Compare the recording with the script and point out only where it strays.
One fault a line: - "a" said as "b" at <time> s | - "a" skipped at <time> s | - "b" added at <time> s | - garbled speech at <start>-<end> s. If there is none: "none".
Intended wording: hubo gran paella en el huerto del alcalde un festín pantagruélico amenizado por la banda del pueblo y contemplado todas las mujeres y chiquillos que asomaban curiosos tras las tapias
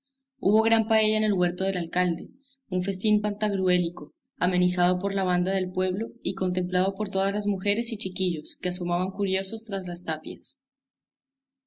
- "por" added at 6.9 s